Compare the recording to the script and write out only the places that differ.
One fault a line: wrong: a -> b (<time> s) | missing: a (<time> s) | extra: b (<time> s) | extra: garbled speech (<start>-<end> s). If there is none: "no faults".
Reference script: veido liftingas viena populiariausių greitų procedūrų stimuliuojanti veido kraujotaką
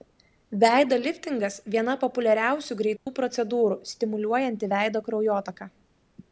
no faults